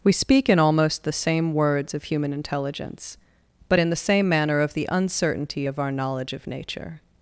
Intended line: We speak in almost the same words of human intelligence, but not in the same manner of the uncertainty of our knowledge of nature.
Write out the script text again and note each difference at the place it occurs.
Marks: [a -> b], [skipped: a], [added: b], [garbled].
We speak in almost the same words of human intelligence, but [skipped: not] in the same manner of the uncertainty of our knowledge of nature.